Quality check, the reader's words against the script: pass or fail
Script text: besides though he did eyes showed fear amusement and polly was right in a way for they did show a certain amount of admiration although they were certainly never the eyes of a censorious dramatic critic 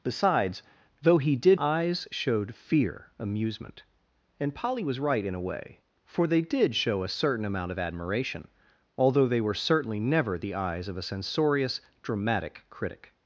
pass